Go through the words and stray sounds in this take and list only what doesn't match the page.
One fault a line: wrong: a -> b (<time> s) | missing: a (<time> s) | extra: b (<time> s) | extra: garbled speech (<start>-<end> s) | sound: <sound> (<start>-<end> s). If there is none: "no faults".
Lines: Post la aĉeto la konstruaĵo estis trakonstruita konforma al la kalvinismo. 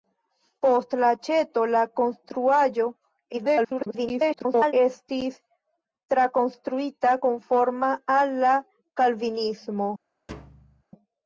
extra: garbled speech (3.3-4.7 s)
sound: thud (10.3-10.8 s)